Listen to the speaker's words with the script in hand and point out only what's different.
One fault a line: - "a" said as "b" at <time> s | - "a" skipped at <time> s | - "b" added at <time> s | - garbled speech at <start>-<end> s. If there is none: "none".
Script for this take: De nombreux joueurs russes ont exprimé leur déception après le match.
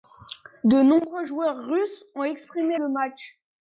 - "leur déception après" skipped at 2.8 s